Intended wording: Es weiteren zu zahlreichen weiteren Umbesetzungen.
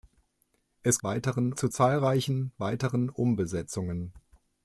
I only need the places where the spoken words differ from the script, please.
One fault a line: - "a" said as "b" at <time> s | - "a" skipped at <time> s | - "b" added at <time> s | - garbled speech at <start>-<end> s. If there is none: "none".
none